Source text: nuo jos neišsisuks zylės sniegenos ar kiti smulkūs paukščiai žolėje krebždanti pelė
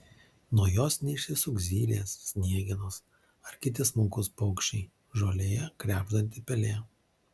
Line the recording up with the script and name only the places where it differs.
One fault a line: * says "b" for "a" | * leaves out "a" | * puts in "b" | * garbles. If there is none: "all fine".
all fine